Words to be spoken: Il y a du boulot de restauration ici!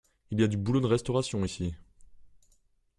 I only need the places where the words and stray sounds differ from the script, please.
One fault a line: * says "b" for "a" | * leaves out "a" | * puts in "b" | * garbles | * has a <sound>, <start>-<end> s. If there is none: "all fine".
all fine